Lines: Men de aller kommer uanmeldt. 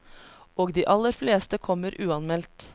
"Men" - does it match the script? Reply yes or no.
no